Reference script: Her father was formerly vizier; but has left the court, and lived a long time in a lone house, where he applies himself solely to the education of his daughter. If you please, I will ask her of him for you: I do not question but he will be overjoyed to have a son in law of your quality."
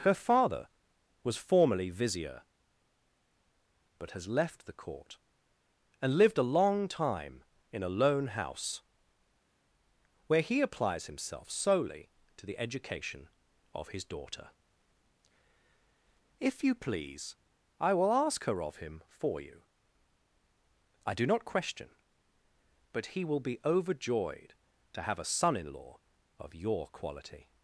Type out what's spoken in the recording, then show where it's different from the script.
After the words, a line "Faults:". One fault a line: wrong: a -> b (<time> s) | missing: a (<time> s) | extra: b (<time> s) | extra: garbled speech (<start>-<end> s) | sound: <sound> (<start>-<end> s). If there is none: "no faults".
Her father was formerly vizier; but has left the court, and lived a long time in a lone house, where he applies himself solely to the education of his daughter. If you please, I will ask her of him for you: I do not question but he will be overjoyed to have a son in law of your quality."
Faults:
no faults